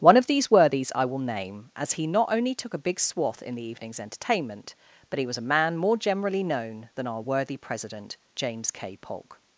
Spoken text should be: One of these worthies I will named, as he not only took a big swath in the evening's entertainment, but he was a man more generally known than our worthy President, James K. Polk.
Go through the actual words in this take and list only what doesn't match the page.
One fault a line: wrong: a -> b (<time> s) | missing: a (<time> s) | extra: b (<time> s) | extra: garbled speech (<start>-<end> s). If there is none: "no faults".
wrong: named -> name (1.2 s)